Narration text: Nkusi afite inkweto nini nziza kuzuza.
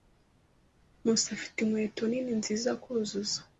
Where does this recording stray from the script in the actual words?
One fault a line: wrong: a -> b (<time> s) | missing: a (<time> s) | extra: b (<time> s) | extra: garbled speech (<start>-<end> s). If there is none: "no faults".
no faults